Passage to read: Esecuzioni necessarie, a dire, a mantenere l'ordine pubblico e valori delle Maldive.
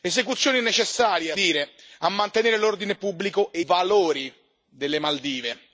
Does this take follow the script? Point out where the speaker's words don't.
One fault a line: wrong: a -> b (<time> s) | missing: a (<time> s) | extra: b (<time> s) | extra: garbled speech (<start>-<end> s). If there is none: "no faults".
no faults